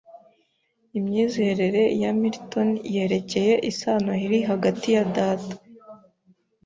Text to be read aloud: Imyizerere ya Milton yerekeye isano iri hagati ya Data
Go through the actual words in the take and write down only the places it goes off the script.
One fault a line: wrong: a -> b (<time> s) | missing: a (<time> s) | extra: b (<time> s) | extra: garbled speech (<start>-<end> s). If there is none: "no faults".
no faults